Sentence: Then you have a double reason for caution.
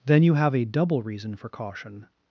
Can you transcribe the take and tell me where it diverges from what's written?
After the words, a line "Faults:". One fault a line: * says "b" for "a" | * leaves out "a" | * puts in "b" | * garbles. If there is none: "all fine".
Then you have a double reason for caution.
Faults:
all fine